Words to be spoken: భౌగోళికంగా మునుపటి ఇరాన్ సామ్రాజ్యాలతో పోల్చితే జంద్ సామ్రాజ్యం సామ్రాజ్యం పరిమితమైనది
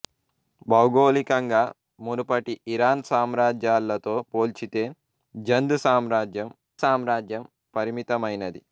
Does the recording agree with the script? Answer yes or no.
yes